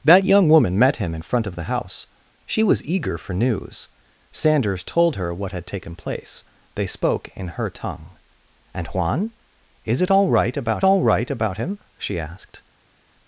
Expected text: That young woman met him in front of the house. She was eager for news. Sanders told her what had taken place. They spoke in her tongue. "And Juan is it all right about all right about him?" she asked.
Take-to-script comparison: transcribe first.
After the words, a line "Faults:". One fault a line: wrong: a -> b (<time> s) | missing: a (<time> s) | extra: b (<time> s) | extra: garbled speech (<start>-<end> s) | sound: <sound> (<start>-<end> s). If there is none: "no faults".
That young woman met him in front of the house. She was eager for news. Sanders told her what had taken place. They spoke in her tongue. "And Juan is it all right about all right about him?" she asked.
Faults:
no faults